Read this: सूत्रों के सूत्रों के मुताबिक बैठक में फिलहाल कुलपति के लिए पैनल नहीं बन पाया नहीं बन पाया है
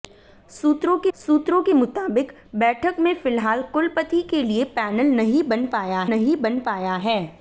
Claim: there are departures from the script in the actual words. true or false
false